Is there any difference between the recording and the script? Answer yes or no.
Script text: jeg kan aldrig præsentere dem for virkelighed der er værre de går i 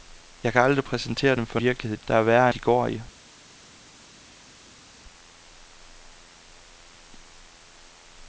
no